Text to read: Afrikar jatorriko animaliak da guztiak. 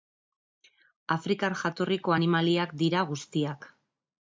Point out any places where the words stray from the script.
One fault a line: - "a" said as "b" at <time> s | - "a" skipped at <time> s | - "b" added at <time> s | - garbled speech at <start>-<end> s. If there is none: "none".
- "da" said as "dira" at 2.8 s